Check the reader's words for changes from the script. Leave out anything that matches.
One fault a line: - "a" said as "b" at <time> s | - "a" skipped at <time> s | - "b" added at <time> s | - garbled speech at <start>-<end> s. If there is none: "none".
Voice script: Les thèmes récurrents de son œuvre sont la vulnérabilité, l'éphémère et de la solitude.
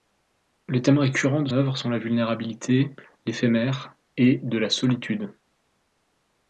- "son" skipped at 1.5 s